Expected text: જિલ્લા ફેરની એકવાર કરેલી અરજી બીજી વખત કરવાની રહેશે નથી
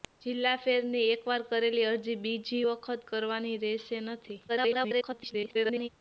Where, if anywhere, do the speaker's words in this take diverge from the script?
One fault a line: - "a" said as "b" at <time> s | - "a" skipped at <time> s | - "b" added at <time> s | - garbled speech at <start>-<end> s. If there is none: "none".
- garbled speech at 4.5-5.9 s